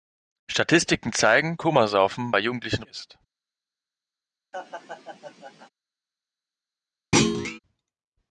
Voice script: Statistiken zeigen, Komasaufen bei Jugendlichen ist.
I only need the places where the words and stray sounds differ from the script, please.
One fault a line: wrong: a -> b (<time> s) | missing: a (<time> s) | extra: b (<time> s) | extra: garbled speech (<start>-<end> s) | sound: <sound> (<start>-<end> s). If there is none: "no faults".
sound: laugh (4.5-5.7 s)
sound: thud (7.1-7.6 s)